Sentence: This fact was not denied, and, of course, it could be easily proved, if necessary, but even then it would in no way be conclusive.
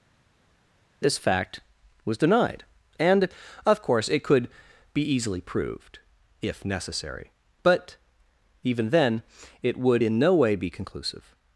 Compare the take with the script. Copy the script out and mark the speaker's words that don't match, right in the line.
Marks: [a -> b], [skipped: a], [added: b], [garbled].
This fact was [skipped: not] denied, and, of course, it could be easily proved, if necessary, but even then it would in no way be conclusive.